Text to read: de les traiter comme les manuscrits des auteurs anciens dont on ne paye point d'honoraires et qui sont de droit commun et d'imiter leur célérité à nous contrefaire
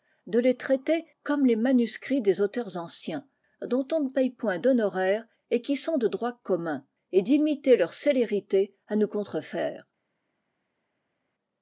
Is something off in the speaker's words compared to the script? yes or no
no